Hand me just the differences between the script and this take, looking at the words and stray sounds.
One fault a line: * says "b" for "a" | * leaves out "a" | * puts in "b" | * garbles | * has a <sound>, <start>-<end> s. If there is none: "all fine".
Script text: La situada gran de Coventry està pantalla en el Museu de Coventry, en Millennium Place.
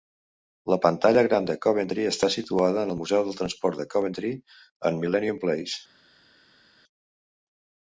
* says "pantalla" for "situada"
* says "situada" for "pantalla"
* puts in "del Transport"